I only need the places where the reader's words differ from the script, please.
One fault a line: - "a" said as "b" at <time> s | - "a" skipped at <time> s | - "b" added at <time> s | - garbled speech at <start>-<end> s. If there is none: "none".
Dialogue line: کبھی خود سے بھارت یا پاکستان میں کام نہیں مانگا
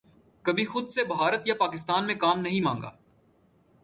none